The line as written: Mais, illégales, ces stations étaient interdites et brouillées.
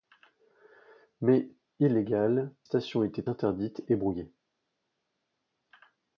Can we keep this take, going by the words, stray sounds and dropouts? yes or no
no